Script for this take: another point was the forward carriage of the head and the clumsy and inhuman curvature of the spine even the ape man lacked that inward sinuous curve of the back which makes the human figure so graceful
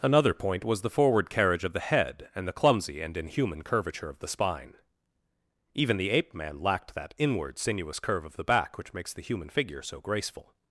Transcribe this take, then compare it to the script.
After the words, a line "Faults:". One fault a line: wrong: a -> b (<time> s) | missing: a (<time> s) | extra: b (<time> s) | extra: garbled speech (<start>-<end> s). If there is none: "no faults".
another point was the forward carriage of the head and the clumsy and inhuman curvature of the spine even the ape man lacked that inward sinuous curve of the back which makes the human figure so graceful
Faults:
no faults